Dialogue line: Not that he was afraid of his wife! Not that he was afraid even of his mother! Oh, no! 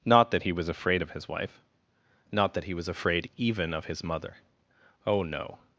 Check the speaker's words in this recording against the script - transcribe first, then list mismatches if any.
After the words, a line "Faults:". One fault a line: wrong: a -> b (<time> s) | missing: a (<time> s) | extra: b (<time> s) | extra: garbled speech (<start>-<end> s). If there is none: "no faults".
Not that he was afraid of his wife! Not that he was afraid even of his mother! Oh, no!
Faults:
no faults